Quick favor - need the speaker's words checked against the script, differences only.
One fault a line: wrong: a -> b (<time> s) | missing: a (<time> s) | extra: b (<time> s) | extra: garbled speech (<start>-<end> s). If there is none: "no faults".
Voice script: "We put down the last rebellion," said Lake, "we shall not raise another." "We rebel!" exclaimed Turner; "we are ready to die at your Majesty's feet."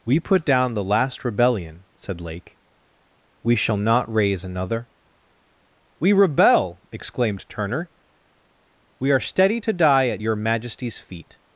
wrong: ready -> steady (9.2 s)